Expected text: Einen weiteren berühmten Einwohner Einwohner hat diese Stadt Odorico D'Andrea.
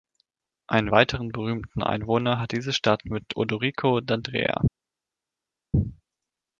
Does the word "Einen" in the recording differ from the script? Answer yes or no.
no